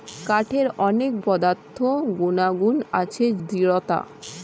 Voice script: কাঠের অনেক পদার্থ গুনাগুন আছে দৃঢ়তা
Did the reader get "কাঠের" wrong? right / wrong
right